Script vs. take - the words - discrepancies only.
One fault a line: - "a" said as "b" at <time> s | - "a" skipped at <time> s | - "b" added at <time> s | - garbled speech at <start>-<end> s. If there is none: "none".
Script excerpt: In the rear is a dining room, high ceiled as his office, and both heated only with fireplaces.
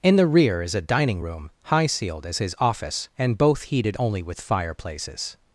none